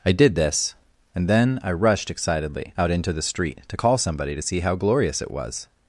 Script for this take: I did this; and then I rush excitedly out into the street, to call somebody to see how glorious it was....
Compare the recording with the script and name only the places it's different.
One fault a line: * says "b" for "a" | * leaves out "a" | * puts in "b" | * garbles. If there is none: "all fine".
* says "rushed" for "rush"